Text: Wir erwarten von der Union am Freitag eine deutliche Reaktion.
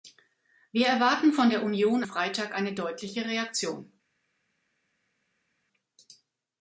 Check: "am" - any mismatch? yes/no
yes